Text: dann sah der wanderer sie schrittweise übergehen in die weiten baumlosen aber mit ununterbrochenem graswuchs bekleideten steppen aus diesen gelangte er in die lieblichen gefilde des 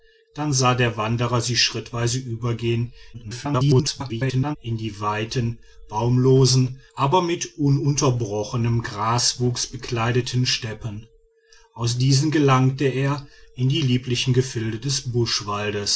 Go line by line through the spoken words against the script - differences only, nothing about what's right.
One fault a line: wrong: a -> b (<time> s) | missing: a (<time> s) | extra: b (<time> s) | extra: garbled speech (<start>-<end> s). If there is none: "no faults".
extra: garbled speech (3.1-4.6 s)